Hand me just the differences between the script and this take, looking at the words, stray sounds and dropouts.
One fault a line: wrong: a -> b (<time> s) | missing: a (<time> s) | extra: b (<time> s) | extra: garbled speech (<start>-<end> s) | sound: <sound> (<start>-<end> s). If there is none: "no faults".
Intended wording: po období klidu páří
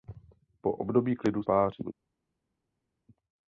no faults